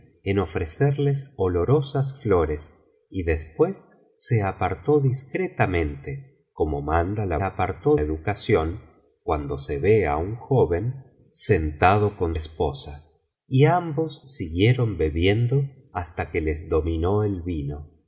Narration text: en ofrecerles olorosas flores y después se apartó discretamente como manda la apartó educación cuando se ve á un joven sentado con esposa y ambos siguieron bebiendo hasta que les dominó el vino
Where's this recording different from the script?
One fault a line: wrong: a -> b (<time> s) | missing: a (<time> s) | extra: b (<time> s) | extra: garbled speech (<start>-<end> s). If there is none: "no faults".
no faults